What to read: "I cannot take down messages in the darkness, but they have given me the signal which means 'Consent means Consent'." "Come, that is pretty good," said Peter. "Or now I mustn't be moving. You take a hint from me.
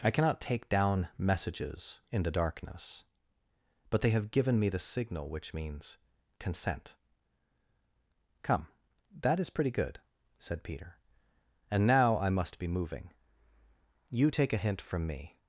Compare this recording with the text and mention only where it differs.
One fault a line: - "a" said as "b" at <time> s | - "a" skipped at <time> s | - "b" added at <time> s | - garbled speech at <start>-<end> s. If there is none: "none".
- "means Consent" skipped at 7.0 s
- "Or" said as "And" at 11.7 s
- "mustn't" said as "must" at 12.3 s